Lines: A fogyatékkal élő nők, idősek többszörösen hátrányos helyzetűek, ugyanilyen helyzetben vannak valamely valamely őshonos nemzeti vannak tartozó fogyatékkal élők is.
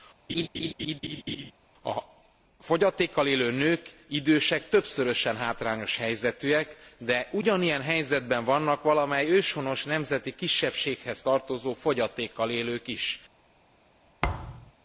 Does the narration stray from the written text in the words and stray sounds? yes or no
yes